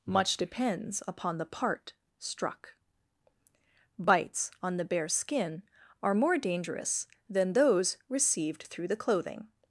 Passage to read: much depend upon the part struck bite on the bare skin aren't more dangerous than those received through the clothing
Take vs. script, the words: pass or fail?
fail